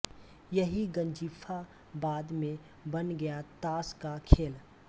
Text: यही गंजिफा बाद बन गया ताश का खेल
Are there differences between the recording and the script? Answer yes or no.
yes